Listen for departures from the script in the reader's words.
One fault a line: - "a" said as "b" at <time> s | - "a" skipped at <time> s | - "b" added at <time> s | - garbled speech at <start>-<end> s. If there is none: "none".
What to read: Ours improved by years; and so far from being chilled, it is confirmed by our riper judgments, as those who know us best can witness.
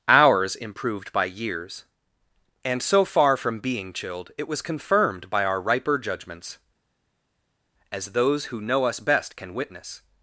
- "is" said as "was" at 4.5 s